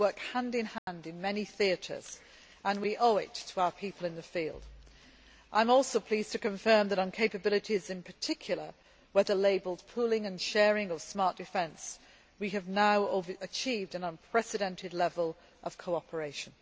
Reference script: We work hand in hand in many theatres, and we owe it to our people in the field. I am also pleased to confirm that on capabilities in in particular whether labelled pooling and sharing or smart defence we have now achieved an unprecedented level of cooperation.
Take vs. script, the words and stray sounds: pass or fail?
fail